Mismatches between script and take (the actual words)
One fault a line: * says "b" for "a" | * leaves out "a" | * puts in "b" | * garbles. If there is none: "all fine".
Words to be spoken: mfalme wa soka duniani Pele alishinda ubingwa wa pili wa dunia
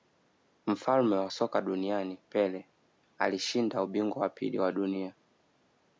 all fine